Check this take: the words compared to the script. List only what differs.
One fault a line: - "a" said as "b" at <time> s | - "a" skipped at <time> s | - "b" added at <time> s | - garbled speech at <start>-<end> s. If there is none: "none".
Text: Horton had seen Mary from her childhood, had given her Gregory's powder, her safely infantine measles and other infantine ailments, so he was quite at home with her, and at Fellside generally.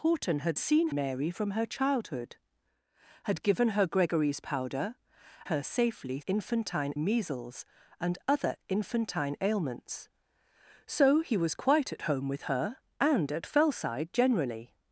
none